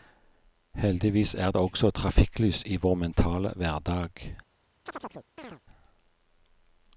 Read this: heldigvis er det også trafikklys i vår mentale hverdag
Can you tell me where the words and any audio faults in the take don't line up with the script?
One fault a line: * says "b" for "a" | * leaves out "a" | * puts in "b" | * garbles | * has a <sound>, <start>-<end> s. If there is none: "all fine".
* has a chirp, 4.9-5.6 s